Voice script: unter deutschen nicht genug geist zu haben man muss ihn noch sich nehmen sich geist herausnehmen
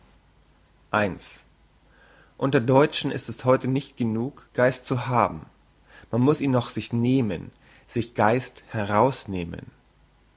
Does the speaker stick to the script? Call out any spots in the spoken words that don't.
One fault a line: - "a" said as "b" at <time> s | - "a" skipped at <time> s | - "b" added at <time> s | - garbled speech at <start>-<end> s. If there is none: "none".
- "ist es heute" added at 3.1 s